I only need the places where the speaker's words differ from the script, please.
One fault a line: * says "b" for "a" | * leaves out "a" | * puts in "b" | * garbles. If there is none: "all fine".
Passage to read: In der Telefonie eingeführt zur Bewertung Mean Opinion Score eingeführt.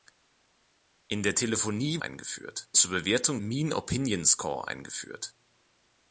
all fine